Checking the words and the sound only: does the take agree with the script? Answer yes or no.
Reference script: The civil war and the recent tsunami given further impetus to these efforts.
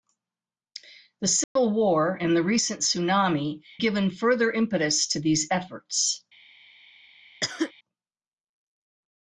no